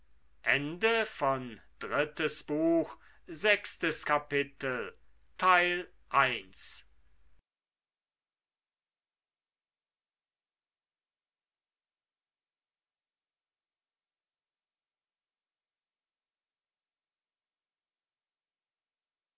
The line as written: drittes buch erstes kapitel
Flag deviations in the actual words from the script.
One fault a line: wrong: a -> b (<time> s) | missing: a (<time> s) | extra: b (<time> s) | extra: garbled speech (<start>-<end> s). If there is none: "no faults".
no faults